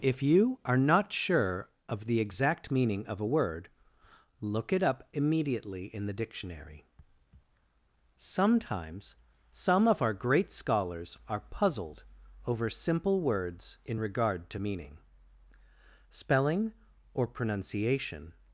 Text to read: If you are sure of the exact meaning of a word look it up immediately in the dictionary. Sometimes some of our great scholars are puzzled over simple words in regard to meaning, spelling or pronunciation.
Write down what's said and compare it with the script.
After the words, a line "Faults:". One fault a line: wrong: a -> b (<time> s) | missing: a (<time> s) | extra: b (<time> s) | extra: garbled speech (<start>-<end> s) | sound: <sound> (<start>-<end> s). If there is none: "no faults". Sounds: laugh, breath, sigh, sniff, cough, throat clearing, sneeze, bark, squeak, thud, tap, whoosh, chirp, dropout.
If you are not sure of the exact meaning of a word look it up immediately in the dictionary. Sometimes some of our great scholars are puzzled over simple words in regard to meaning, spelling or pronunciation.
Faults:
extra: not (0.8 s)